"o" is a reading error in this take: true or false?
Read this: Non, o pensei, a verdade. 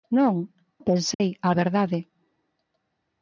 false